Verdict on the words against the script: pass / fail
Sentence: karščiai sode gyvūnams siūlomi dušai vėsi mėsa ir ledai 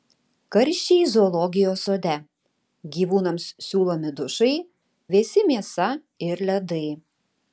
fail